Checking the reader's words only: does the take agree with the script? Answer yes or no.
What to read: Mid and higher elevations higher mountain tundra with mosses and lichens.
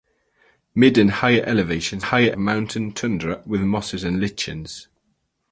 yes